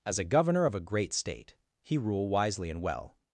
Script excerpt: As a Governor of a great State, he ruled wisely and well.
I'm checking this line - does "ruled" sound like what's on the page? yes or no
no